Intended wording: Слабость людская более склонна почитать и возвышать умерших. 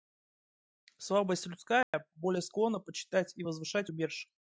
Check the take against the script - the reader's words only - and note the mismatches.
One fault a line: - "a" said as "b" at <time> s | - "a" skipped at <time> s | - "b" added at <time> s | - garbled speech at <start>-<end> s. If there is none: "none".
none